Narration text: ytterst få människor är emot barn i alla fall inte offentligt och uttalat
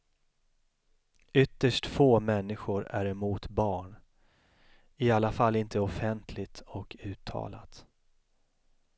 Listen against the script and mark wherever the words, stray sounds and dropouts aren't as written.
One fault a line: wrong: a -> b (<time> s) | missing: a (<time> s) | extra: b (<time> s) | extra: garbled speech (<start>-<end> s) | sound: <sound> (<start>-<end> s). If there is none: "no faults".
no faults